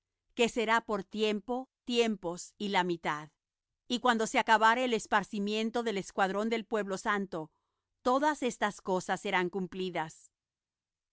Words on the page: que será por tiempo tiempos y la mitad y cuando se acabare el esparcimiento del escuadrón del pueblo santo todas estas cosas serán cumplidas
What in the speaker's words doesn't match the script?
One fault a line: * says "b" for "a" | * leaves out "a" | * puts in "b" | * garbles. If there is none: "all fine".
all fine